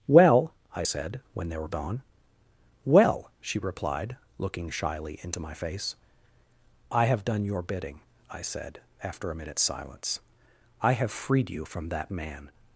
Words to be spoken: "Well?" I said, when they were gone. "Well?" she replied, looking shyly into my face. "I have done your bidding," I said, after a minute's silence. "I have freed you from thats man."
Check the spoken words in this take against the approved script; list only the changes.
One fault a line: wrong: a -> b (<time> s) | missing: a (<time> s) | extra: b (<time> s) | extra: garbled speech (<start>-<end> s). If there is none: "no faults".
wrong: thats -> that (11.9 s)